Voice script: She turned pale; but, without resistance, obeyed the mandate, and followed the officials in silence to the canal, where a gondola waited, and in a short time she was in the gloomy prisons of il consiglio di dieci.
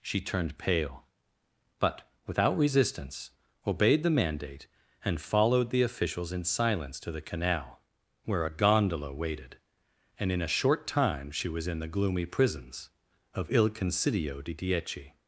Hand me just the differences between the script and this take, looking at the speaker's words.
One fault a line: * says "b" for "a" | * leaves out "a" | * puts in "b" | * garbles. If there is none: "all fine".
all fine